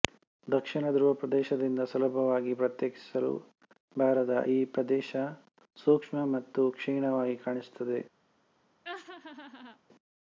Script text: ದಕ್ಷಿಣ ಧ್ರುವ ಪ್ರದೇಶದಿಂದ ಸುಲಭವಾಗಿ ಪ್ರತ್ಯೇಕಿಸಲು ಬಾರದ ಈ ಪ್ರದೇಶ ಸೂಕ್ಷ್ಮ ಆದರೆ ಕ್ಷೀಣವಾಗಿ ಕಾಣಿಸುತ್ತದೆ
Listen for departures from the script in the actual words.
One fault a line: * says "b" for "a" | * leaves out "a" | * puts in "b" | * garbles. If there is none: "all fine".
* says "ಮತ್ತು" for "ಆದರೆ"